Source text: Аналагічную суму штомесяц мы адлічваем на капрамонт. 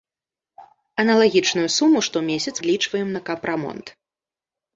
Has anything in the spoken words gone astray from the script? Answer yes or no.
yes